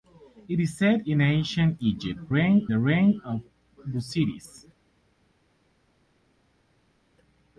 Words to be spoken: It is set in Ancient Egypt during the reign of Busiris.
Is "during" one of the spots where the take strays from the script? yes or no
yes